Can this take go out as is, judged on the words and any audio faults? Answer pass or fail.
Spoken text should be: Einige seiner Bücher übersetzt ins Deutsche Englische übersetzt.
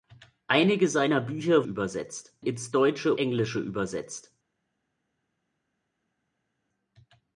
pass